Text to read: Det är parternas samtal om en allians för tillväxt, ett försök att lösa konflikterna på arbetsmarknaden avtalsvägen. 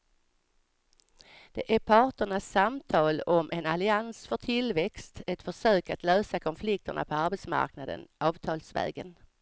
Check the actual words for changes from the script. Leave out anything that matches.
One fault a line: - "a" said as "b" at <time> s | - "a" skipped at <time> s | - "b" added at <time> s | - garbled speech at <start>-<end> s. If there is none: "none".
none